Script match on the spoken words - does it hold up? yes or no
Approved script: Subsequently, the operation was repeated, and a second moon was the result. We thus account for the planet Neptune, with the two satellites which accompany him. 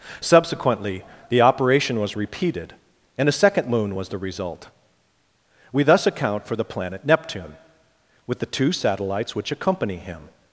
yes